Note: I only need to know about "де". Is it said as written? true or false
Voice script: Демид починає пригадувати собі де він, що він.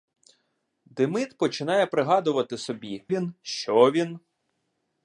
false